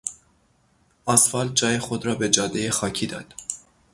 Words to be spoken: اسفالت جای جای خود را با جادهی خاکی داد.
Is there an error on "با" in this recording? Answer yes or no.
yes